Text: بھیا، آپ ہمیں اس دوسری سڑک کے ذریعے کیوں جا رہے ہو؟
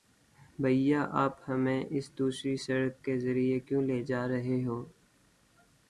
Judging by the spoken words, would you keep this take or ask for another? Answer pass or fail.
fail